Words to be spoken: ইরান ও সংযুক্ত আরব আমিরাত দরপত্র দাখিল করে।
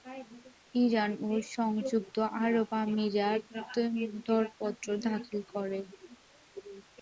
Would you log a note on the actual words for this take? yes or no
no